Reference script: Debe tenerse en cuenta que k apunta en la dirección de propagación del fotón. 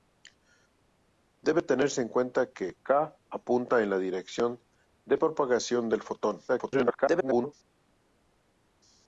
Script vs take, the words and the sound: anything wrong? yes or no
yes